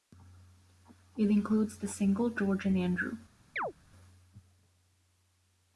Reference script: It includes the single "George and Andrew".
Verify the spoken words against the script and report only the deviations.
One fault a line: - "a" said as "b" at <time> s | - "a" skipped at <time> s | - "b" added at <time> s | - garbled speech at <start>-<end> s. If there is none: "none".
none